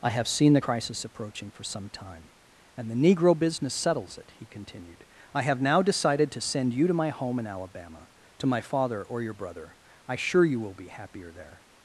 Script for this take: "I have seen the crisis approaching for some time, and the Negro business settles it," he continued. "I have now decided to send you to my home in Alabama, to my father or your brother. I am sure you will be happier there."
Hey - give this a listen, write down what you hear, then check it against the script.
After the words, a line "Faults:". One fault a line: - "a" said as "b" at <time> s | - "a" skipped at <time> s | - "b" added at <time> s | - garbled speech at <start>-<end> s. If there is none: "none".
"I have seen the crisis approaching for some time, and the Negro business settles it," he continued. "I have now decided to send you to my home in Alabama, to my father or your brother. I sure you will be happier there."
Faults:
- "am" skipped at 10.2 s